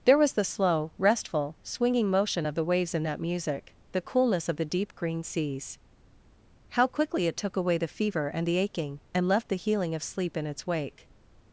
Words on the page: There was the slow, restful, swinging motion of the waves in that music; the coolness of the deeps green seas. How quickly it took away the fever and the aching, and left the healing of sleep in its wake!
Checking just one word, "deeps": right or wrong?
wrong